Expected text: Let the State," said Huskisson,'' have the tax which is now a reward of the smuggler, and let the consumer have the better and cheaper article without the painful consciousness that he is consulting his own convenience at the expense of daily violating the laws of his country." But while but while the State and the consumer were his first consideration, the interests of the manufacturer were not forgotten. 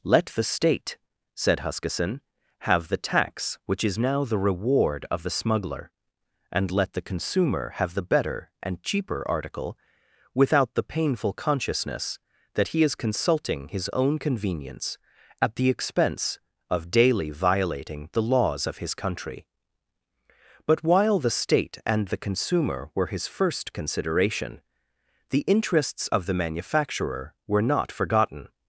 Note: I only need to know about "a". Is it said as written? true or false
false